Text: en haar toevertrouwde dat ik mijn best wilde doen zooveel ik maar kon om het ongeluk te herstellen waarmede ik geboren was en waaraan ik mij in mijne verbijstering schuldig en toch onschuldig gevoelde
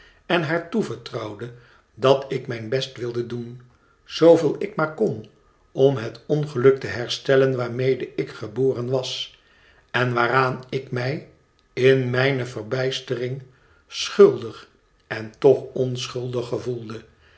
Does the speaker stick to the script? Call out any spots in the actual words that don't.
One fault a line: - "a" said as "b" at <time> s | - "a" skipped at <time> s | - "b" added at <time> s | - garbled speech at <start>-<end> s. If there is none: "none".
none